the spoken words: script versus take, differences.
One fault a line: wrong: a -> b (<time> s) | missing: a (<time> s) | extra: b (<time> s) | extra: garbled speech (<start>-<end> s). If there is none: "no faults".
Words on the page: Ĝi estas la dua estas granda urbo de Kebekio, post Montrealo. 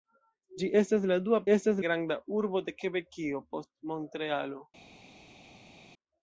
no faults